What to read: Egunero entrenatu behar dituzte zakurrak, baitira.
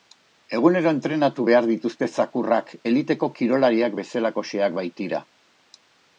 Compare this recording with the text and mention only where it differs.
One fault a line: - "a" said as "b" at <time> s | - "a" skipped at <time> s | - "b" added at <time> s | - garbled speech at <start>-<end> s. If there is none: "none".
- "eliteko kirolariak bezalakoxeak" added at 2.9 s